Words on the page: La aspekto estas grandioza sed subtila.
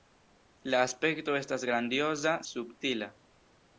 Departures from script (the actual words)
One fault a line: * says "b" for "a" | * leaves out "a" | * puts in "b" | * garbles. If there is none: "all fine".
* leaves out "sed"